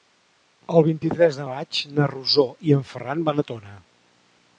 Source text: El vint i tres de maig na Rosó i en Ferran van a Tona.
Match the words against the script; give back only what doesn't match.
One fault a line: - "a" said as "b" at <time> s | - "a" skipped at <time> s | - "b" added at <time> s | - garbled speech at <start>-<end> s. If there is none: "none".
none